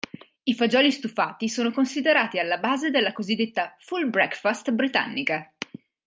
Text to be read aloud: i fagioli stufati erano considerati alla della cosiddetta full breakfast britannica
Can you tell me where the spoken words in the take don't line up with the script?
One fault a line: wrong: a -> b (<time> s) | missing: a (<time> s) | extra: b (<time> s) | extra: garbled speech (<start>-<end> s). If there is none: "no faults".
wrong: erano -> sono (1.5 s)
extra: base (2.6 s)